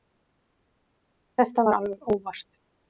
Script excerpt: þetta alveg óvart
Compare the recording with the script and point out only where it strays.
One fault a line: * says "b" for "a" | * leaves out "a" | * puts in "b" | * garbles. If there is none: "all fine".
* puts in "var"